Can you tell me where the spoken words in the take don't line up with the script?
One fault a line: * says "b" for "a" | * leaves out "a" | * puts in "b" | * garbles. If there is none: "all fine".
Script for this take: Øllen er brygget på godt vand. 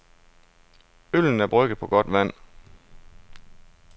all fine